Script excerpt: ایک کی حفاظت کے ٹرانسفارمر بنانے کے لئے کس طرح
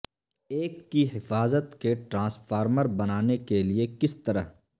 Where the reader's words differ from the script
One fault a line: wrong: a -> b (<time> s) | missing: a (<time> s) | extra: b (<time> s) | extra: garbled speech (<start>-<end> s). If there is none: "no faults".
no faults